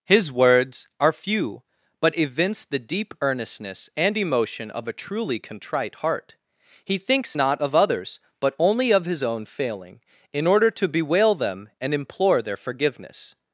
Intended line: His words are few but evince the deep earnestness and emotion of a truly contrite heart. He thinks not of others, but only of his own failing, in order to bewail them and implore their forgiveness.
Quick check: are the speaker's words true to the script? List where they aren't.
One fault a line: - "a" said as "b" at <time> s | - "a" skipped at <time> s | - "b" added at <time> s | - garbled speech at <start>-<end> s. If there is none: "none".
none